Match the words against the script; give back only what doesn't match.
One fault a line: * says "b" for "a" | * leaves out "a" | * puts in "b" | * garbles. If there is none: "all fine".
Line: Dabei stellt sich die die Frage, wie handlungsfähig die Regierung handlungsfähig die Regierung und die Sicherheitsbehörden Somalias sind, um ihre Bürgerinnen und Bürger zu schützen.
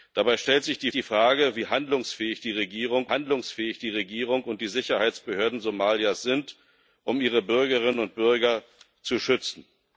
all fine